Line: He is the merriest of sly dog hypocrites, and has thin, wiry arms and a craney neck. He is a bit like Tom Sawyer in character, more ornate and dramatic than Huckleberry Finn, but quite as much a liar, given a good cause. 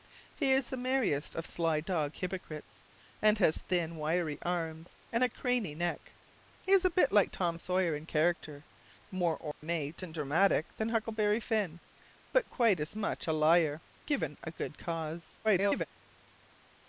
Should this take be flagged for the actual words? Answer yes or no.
yes